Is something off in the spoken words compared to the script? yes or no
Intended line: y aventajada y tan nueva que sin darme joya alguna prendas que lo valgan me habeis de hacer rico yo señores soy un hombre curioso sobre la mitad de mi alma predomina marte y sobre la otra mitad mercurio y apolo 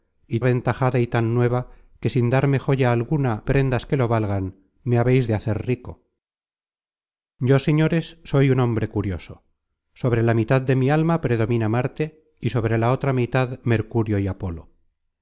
no